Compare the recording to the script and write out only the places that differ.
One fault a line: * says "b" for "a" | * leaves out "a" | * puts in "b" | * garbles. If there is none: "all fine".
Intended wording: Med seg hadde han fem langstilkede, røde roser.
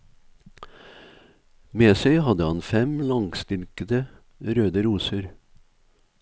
all fine